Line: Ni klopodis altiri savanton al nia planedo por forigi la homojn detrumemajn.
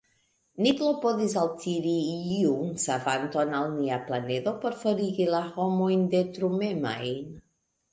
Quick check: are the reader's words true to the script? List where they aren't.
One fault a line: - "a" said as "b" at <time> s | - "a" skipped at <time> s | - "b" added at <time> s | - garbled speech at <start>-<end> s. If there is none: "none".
- "iun" added at 2.4 s